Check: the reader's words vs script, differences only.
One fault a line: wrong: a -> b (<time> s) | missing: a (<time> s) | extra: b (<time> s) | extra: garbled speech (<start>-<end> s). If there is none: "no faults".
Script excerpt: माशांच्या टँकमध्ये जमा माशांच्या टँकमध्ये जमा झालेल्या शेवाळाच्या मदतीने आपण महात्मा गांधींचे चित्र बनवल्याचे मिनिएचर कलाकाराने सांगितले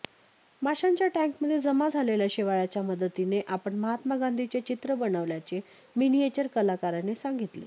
missing: माशांच्या टँकमध्ये जमा (1.9 s)